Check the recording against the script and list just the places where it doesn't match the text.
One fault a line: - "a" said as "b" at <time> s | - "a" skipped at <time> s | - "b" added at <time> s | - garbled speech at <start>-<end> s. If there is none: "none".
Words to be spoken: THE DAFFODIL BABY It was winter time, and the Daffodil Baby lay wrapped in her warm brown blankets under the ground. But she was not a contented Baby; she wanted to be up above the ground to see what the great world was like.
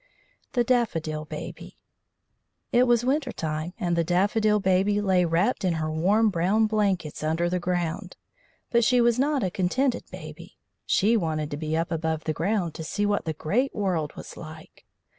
none